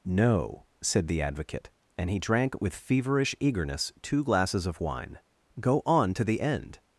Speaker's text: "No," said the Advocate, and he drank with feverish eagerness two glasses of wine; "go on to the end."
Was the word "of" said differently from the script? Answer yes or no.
no